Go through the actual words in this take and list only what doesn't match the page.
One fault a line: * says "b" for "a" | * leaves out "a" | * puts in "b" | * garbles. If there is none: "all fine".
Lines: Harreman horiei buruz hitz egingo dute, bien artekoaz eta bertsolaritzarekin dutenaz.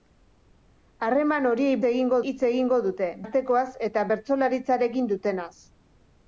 * says "egingo" for "buruz"
* leaves out "bien"